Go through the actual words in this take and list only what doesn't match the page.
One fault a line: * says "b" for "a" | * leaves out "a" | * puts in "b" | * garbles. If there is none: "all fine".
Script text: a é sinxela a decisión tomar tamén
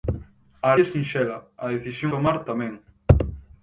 all fine